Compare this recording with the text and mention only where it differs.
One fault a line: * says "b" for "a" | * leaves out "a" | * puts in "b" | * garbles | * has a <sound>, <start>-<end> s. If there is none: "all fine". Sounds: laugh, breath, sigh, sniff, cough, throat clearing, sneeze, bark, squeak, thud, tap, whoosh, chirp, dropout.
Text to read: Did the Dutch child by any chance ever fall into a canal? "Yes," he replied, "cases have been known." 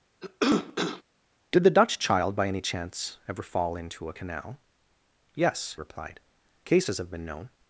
* has a cough, 0.2-1.0 s
* leaves out "he"